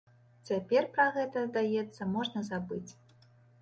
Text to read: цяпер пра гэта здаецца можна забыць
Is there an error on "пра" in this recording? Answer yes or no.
no